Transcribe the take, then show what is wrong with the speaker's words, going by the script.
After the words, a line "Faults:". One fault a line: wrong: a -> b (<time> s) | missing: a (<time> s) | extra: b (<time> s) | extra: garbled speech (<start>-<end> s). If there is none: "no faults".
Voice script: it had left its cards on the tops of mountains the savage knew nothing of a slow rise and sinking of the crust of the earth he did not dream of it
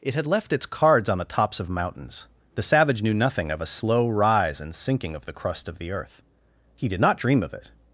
it had left its cards on the tops of mountains the savage knew nothing of a slow rise and sinking of the crust of the earth he did not dream of it
Faults:
no faults